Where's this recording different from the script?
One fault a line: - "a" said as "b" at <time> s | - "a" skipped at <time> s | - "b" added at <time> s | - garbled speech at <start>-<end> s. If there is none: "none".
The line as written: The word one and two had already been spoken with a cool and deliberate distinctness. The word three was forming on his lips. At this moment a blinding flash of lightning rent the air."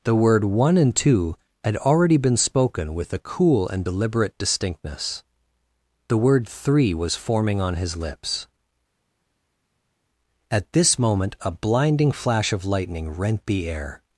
none